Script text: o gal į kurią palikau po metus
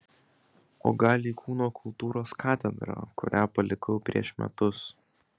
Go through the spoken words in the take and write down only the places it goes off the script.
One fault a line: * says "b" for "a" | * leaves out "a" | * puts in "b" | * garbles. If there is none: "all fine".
* puts in "kūno kultūros katedrą"
* says "prieš" for "po"